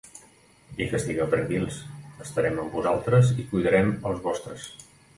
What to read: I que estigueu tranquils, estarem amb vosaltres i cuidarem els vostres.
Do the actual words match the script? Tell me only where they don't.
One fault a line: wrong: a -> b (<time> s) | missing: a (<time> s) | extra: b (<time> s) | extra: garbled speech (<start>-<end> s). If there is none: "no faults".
no faults